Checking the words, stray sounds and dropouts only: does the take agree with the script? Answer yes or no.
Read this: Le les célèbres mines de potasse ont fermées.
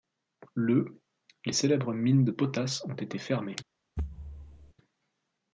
no